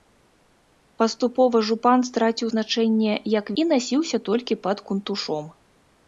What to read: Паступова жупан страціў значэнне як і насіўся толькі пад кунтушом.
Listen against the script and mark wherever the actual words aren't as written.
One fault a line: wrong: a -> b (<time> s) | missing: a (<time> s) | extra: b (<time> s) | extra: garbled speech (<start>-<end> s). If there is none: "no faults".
no faults